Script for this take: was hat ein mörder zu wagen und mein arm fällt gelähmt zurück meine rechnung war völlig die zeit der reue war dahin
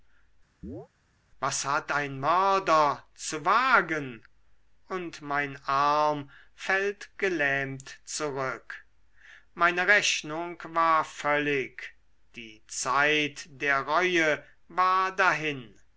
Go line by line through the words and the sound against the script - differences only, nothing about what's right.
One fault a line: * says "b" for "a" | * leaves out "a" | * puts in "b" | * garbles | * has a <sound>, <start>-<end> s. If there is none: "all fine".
* has a chirp, 0.6-0.9 s